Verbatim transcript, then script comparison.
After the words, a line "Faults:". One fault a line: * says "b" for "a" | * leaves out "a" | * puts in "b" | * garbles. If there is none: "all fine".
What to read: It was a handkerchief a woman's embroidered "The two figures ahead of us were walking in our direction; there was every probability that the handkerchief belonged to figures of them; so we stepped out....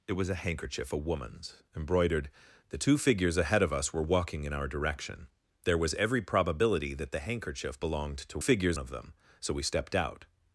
It was a handkerchief a woman's embroidered "The two figures ahead of us were walking in our direction; there was every probability that the handkerchief belonged to figures of them; so we stepped out....
Faults:
all fine